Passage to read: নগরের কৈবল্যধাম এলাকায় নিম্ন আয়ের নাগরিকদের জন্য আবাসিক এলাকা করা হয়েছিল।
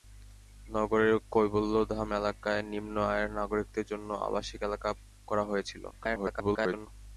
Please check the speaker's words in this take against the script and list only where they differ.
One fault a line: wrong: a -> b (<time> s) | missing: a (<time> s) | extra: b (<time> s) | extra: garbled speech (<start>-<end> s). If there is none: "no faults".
extra: garbled speech (5.9-6.9 s)